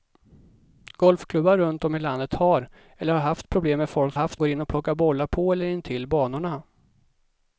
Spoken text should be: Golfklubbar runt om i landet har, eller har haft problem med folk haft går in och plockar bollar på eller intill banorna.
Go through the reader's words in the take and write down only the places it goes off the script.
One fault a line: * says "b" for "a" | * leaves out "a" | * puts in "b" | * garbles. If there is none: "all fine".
all fine